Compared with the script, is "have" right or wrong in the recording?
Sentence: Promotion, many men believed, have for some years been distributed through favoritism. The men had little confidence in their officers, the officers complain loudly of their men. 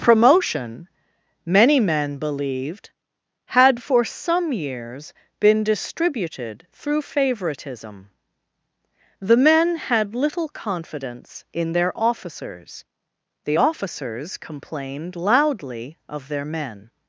wrong